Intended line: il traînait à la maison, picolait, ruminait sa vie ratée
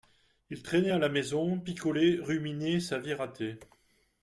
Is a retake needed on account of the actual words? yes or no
no